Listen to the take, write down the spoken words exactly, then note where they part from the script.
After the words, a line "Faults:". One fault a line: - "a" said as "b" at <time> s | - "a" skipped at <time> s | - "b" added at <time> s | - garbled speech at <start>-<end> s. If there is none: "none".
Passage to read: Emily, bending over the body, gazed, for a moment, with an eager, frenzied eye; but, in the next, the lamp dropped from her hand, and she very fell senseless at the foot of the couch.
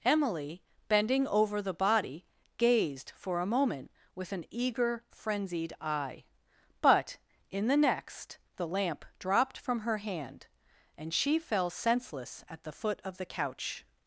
Emily, bending over the body, gazed, for a moment, with an eager, frenzied eye; but, in the next, the lamp dropped from her hand, and she fell senseless at the foot of the couch.
Faults:
- "very" skipped at 11.4 s